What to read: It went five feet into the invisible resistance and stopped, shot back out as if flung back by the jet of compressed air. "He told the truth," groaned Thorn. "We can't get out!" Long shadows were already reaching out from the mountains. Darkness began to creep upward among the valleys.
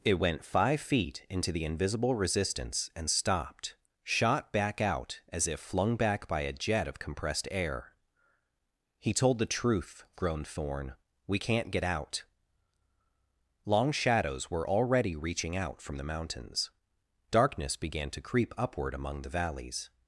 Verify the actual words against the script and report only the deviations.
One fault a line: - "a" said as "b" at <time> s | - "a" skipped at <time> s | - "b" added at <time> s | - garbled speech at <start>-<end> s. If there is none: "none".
- "the" said as "a" at 6.4 s